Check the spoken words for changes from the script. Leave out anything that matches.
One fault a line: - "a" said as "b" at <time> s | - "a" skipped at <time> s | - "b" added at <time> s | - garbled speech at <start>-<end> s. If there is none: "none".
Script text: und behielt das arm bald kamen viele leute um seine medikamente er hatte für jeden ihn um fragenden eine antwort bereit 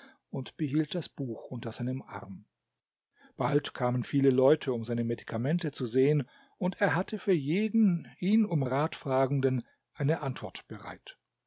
- "buch unter seinem" added at 1.1 s
- "zu sehen und" added at 5.7 s
- "rat" added at 8.6 s